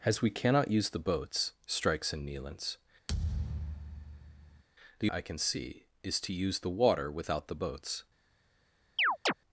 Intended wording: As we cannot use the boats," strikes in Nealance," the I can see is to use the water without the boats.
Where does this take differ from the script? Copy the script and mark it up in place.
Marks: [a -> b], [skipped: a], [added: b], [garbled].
As we cannot use the boats," strikes in Nealance," the I can see is to use the water without the boats.